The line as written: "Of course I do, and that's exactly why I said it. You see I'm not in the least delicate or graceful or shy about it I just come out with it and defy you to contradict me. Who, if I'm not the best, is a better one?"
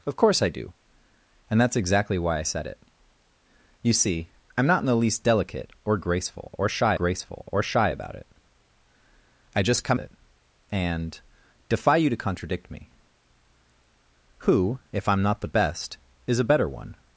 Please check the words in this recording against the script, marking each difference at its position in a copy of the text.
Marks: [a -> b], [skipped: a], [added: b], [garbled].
"Of course I do, and that's exactly why I said it. You see I'm not in the least delicate or graceful or shy [added: graceful or shy] about it I just come [skipped: out with] it and defy you to contradict me. Who, if I'm not the best, is a better one?"